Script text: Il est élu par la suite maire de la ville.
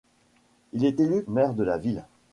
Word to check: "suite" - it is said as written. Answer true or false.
false